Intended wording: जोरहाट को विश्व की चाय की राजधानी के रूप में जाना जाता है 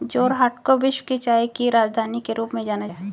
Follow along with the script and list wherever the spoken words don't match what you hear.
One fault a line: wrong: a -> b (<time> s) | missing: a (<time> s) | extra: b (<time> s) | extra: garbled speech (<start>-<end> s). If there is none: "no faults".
missing: जाता (2.9 s)